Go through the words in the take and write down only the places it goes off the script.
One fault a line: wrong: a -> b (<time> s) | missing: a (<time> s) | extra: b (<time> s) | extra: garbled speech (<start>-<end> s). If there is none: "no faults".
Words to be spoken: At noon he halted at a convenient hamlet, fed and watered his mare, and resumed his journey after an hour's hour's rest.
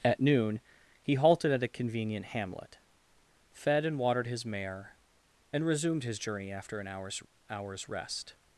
no faults